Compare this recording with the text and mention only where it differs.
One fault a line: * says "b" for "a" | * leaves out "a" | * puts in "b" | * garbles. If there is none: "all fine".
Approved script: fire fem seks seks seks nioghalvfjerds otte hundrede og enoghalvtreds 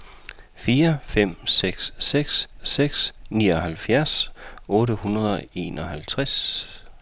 all fine